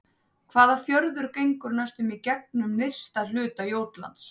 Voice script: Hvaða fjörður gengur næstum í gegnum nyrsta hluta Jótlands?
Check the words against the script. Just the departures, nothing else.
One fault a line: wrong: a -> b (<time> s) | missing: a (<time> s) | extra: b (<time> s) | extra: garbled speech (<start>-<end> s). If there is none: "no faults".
no faults